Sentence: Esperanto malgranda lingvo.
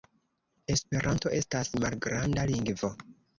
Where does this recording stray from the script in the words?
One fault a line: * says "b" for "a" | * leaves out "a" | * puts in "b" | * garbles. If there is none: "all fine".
* puts in "estas"